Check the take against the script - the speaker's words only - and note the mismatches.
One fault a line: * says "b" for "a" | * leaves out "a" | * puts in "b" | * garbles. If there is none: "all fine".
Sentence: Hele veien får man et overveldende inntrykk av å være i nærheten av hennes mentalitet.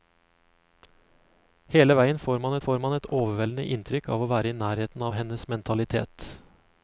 * puts in "får man"